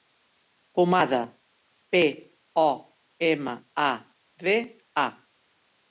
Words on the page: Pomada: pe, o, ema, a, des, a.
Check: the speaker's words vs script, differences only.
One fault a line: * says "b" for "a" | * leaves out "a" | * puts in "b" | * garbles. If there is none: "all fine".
* says "de" for "des"